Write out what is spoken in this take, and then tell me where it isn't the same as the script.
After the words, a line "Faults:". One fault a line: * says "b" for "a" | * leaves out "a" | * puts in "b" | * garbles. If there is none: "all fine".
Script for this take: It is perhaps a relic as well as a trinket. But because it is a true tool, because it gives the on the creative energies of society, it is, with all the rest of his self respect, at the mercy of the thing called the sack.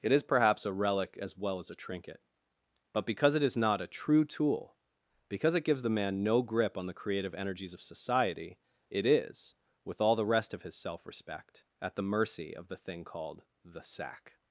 It is perhaps a relic as well as a trinket. But because it is not a true tool, because it gives the man no grip on the creative energies of society, it is, with all the rest of his self respect, at the mercy of the thing called the sack.
Faults:
* puts in "not"
* puts in "man no grip"